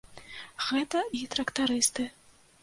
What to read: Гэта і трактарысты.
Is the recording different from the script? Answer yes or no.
no